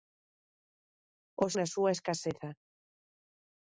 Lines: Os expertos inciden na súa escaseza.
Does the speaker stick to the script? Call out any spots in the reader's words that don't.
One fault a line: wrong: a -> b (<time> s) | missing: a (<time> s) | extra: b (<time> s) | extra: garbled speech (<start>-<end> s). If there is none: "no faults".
missing: expertos inciden (1.5 s)